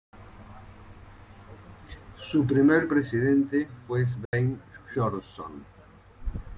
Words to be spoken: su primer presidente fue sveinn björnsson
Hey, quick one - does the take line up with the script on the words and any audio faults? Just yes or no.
no